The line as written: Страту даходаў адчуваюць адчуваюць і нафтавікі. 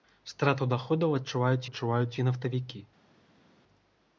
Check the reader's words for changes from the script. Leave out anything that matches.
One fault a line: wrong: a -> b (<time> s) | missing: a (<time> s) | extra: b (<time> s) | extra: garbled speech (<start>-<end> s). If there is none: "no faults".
no faults